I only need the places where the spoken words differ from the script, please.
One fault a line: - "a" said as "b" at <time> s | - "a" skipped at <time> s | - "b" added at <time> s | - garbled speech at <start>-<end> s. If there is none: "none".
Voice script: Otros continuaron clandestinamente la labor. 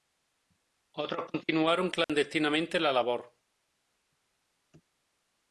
none